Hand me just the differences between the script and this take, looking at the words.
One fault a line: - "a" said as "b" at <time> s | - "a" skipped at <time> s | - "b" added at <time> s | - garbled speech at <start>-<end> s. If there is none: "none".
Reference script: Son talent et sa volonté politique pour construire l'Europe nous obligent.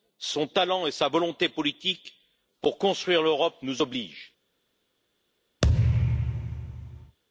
none